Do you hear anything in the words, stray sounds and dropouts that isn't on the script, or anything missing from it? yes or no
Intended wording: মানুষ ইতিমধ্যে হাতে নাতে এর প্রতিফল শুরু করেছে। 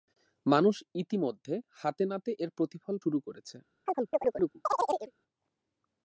yes